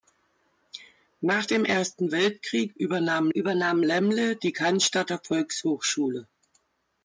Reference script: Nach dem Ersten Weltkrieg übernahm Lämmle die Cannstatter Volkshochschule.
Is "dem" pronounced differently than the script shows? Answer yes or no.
no